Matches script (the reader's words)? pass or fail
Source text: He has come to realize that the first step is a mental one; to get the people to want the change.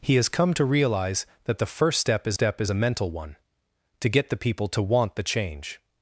fail